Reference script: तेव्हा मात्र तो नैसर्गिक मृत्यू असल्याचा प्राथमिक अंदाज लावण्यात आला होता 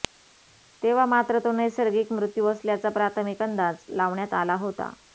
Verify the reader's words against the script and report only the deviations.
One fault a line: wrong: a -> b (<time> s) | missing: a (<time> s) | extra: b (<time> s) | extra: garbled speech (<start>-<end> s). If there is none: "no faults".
no faults